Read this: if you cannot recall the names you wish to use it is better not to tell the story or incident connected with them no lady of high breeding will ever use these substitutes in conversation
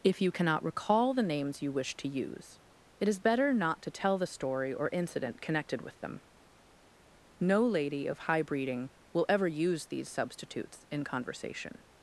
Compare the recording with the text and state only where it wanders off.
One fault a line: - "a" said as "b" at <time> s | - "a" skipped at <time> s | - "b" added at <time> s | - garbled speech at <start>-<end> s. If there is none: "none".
none